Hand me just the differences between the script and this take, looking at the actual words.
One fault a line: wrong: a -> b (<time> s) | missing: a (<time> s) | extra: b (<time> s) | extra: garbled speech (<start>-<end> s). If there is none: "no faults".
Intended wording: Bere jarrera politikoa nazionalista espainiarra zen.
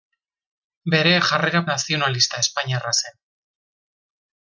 missing: politikoa (1.6 s)